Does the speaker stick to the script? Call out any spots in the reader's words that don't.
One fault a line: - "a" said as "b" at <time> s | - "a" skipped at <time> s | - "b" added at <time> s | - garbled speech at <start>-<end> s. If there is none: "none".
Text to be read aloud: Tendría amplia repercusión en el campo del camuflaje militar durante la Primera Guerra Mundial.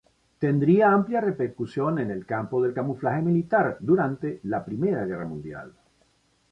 none